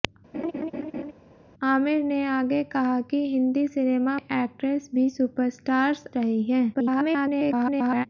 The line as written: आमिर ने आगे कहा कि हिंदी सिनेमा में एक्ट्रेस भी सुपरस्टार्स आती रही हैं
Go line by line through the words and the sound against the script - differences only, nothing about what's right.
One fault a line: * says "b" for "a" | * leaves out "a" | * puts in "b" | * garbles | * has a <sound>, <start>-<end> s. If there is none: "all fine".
* has a laugh, 0.3-1.1 s
* leaves out "में"
* leaves out "आती"
* garbles